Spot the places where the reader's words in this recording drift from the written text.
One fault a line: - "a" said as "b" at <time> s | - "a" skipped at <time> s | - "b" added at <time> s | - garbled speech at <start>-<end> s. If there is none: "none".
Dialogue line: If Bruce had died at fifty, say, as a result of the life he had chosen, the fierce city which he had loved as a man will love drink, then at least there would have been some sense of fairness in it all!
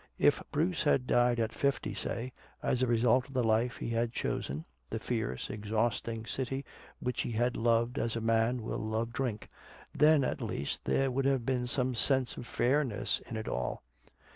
- "exhausting" added at 5.5 s